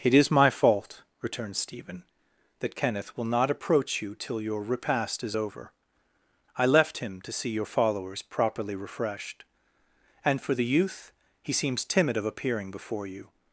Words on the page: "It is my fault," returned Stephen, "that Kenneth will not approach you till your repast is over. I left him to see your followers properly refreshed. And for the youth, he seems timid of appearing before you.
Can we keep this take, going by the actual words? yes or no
yes